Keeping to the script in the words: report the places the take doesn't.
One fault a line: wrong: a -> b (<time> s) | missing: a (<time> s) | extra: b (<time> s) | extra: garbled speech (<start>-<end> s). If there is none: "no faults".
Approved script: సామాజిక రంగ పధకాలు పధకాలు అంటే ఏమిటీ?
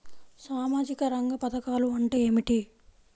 missing: పధకాలు (1.9 s)